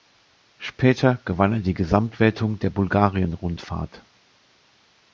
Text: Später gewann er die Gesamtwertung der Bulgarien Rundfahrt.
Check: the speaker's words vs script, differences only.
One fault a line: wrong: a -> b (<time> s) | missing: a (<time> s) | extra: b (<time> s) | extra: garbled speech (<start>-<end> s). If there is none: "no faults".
no faults